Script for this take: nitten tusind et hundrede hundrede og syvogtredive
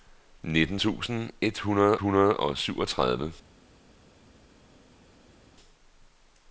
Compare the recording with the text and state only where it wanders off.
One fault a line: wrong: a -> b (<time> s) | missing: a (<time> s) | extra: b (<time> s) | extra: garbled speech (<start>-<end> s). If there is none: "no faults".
no faults